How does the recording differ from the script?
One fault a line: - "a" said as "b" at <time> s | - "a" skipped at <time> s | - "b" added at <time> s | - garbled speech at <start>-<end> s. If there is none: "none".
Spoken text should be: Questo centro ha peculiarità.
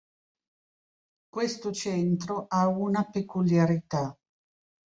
- "una" added at 2.7 s